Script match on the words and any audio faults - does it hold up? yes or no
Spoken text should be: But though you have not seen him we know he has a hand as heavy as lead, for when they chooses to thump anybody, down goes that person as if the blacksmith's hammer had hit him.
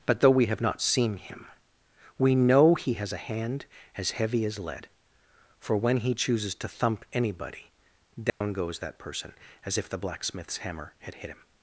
no